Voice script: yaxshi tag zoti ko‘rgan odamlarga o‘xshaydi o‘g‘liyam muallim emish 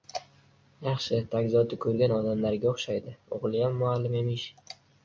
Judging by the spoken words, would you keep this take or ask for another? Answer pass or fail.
pass